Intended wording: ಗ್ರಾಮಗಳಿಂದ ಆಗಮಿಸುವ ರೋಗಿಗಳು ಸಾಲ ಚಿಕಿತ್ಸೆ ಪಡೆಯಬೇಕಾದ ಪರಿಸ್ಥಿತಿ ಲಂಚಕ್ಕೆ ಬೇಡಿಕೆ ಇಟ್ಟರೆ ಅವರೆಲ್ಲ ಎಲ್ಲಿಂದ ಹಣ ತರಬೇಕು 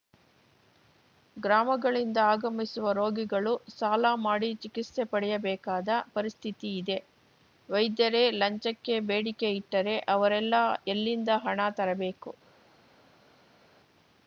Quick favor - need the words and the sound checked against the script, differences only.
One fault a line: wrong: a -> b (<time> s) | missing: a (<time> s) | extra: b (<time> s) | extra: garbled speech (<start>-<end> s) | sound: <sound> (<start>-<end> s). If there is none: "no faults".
extra: ಮಾಡಿ (4.2 s)
extra: ಇದೆ ವೈದ್ಯರೇ (6.8 s)